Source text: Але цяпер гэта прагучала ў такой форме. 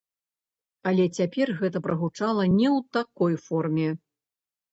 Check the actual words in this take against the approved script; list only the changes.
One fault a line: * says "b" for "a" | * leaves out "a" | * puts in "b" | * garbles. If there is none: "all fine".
* puts in "не"